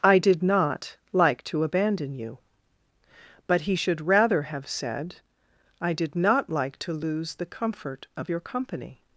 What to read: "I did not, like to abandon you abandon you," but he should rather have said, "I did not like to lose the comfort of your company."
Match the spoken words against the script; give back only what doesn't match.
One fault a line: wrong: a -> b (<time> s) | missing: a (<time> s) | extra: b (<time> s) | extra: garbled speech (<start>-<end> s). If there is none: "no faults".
missing: abandon you (2.4 s)